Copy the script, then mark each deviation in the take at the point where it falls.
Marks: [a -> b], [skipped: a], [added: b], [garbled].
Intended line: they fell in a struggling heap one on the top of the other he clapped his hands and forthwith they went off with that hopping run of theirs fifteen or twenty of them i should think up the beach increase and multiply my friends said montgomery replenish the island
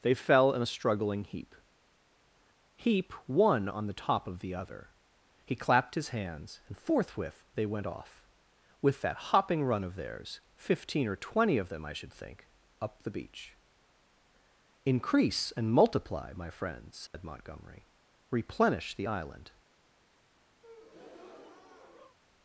they fell in a struggling heap [added: heap] one on the top of the other he clapped his hands and forthwith they went off with that hopping run of theirs fifteen or twenty of them i should think up the beach increase and multiply my friends said montgomery replenish the island